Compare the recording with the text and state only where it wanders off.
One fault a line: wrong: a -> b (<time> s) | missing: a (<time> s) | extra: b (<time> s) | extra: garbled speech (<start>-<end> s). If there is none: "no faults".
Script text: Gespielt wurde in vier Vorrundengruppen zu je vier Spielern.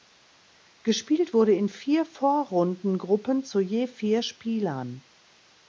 no faults